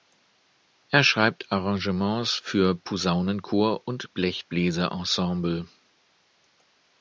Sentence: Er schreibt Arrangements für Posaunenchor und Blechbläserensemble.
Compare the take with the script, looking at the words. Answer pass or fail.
pass